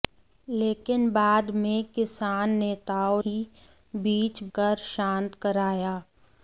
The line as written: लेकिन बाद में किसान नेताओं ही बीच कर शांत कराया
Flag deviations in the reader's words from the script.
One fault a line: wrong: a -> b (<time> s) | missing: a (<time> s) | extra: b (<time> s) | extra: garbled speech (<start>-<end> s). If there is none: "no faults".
no faults